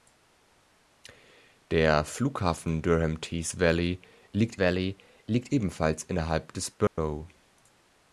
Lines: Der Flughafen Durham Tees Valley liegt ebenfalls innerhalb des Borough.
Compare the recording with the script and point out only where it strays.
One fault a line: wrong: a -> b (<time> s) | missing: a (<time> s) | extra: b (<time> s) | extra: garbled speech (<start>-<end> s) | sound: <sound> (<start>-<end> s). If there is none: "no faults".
extra: Valley liegt (4.6 s)
sound: dropout (6.9-7.0 s)